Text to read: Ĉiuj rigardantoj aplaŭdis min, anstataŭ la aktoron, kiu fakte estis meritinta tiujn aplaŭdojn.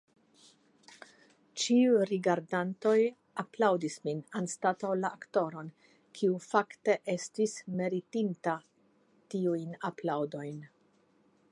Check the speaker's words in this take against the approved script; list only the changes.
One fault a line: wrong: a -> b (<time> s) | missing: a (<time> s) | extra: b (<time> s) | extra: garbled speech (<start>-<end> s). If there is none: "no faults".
no faults